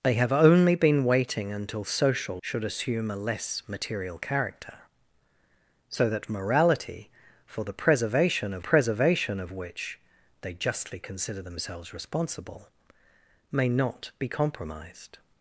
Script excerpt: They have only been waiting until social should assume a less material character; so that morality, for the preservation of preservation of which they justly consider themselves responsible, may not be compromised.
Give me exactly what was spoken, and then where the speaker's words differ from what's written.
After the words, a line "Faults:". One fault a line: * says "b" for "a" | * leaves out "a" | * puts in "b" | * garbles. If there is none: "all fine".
They have only been waiting until social should assume a less material character; so that morality, for the preservation of preservation of which they justly consider themselves responsible, may not be compromised.
Faults:
all fine